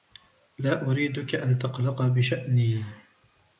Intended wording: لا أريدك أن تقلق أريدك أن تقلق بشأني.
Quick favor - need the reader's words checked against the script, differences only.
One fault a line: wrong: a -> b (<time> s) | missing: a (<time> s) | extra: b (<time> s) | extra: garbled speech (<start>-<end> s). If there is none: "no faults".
missing: أريدك أن تقلق (2.1 s)